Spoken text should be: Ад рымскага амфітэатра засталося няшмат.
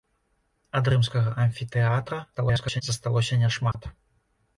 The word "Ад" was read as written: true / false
true